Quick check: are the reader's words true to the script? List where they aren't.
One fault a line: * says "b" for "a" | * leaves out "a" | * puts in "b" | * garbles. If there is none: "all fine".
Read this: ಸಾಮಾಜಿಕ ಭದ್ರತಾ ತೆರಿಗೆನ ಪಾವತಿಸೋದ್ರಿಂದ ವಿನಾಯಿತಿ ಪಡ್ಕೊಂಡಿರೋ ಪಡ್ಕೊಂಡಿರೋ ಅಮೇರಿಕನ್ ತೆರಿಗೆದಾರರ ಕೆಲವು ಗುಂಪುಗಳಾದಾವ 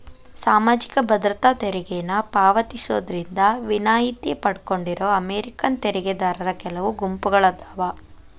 * leaves out "ಪಡ್ಕೊಂಡಿರೋ"